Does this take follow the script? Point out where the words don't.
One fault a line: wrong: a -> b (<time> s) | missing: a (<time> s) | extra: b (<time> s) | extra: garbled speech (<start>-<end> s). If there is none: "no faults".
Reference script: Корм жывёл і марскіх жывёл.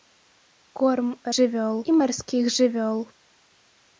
no faults